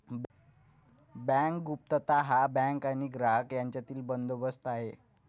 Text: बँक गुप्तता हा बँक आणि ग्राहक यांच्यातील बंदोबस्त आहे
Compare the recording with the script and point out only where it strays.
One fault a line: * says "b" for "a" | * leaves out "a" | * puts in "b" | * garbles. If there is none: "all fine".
all fine